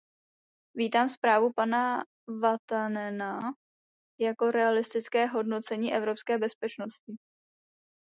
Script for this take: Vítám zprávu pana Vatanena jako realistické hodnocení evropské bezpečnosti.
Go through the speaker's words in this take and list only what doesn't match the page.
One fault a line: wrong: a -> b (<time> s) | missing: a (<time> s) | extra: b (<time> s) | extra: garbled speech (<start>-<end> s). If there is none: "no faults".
no faults